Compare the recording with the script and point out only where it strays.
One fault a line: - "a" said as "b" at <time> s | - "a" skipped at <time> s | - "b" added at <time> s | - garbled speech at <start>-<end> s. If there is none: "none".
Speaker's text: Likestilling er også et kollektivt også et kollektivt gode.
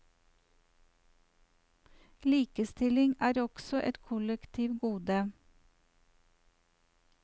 - "også et kollektivt" skipped at 4.8 s